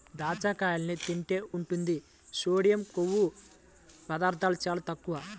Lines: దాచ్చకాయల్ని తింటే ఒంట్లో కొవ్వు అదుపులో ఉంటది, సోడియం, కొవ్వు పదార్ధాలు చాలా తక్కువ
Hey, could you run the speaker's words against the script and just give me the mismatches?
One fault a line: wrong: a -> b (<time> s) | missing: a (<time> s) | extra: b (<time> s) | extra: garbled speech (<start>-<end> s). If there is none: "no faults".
missing: ఒంట్లో కొవ్వు అదుపులో (1.4 s)